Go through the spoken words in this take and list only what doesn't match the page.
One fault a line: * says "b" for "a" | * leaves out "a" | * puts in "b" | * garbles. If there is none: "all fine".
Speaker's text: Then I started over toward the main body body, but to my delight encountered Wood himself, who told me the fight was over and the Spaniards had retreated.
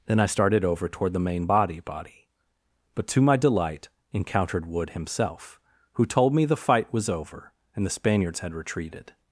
all fine